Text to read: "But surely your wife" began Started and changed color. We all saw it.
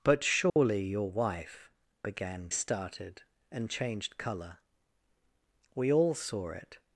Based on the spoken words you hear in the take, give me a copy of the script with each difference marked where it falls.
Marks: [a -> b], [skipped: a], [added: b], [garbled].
"But surely your wife" began Started and changed color. We all saw it.